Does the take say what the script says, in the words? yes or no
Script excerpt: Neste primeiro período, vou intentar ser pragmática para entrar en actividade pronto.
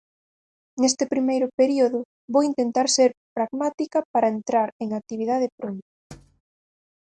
yes